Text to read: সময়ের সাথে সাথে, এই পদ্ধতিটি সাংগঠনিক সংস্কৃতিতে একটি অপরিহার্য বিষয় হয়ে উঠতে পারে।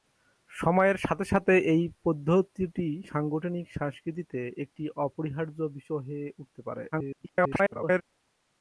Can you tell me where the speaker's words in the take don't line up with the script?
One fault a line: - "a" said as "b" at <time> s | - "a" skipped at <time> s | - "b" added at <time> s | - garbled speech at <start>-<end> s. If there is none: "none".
- garbled speech at 6.9-8.0 s